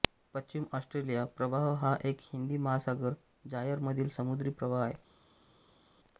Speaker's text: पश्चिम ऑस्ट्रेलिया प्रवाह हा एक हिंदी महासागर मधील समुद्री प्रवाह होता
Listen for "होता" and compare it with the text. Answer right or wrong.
wrong